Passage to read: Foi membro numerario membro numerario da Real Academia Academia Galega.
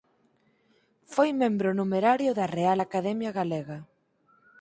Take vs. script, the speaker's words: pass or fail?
fail